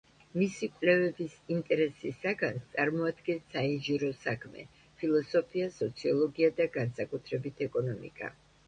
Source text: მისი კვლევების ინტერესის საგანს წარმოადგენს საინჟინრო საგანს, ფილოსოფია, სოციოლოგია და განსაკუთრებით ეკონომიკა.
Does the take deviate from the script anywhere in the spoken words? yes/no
yes